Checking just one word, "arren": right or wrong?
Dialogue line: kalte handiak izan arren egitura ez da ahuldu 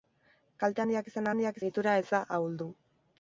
wrong